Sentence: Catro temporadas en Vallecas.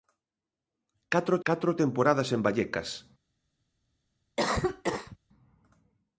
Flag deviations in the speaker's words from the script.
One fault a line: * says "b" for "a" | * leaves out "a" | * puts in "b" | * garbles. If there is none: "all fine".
* puts in "catro"